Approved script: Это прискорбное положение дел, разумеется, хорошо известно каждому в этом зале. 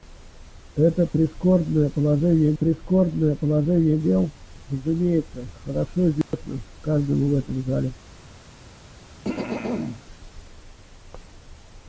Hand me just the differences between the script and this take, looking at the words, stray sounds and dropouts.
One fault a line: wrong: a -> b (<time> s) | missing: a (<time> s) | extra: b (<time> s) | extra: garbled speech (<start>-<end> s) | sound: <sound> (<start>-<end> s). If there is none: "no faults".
extra: прискорбное положение (2.5 s)
sound: dropout (6.2-6.3 s)
sound: throat clearing (9.2-10.0 s)